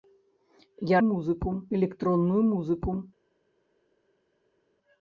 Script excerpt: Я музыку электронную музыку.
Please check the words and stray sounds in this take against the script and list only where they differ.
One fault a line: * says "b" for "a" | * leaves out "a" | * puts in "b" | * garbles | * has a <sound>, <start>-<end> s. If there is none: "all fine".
all fine